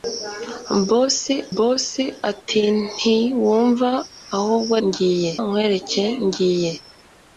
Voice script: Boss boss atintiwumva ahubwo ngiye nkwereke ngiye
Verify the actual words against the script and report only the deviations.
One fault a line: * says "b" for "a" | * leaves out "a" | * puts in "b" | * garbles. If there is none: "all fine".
all fine